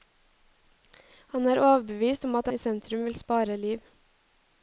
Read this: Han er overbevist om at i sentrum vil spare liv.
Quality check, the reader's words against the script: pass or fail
pass